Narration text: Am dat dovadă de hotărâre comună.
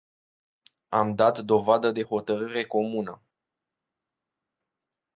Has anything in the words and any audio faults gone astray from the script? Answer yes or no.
no